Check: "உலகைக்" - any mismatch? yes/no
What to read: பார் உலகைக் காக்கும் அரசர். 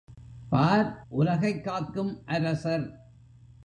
no